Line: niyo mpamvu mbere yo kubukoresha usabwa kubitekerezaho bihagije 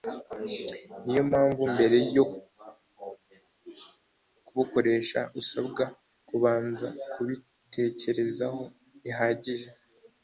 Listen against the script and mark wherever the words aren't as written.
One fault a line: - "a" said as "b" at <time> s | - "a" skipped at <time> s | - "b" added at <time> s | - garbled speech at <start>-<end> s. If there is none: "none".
- "kubanza" added at 6.3 s